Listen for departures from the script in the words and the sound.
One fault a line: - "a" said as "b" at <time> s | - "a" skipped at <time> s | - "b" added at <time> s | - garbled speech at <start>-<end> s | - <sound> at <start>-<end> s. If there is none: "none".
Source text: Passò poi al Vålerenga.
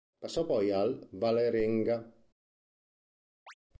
- chirp at 3.5-3.5 s